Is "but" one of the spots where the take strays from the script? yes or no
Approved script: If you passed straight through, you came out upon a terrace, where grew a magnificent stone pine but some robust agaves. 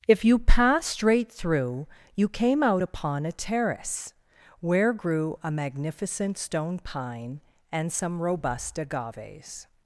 yes